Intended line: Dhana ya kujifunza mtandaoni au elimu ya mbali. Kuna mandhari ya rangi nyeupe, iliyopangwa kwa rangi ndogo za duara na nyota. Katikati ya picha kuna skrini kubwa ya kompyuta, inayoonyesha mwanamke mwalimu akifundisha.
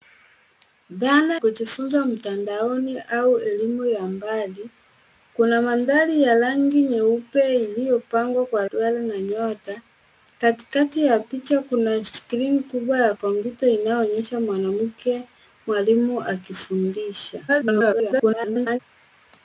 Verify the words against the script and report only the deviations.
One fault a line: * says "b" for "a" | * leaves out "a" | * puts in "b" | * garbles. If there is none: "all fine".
* leaves out "ya"
* leaves out "rangi ndogo za"
* garbles